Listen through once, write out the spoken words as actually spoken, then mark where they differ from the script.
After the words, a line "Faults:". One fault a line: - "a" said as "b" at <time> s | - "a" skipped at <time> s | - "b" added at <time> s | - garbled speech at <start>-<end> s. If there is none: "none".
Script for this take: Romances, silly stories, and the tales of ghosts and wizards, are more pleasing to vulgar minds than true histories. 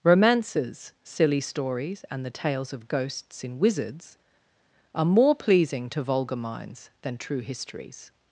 Romances, silly stories, and the tales of ghosts in wizards, are more pleasing to vulgar minds than true histories.
Faults:
- "and" said as "in" at 3.4 s